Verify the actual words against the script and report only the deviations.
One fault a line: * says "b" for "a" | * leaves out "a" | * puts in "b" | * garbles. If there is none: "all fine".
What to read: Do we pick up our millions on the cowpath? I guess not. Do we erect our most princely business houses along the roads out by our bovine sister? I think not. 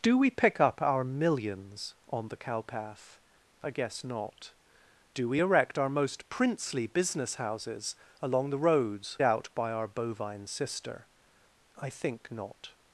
all fine